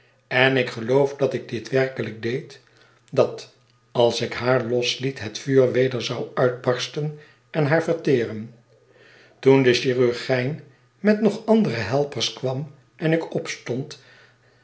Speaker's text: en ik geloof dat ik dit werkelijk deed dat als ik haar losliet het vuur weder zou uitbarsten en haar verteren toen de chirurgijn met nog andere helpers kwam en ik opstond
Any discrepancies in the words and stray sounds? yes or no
no